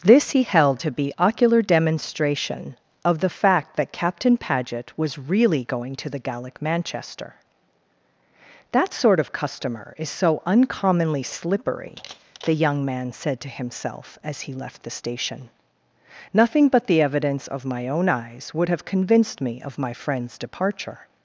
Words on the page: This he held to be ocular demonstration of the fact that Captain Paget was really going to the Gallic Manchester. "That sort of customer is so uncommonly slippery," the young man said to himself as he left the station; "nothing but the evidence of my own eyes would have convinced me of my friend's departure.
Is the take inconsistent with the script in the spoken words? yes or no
no